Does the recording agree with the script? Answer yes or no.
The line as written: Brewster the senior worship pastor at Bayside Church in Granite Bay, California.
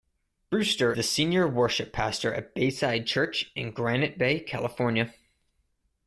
yes